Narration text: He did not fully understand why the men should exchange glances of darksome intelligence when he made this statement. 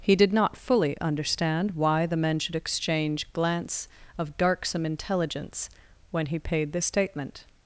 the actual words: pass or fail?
fail